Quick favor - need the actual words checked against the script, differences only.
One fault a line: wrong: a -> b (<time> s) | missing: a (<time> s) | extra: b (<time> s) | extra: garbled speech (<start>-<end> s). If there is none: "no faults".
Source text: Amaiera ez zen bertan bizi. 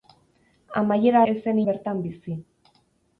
no faults